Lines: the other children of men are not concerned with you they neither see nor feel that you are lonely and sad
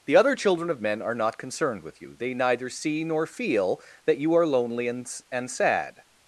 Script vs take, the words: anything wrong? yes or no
yes